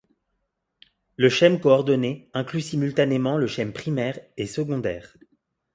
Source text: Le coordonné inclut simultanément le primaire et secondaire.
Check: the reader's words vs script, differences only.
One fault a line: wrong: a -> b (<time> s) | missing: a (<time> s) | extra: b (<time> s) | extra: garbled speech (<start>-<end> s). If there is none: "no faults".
extra: schème (1.3 s)
extra: schème (3.5 s)